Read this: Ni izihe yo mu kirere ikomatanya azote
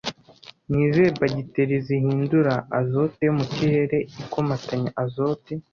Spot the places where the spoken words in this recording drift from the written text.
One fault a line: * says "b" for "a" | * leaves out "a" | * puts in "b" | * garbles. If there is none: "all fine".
* puts in "bagiteri zihindura azote"